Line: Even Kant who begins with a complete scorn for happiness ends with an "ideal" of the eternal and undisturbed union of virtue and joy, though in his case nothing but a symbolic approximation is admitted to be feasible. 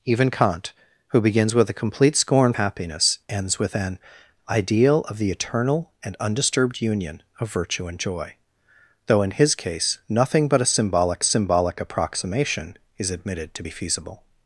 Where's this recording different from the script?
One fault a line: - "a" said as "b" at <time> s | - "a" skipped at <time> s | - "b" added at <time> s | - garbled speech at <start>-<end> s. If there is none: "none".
- "for" skipped at 2.5 s
- "symbolic" added at 11.2 s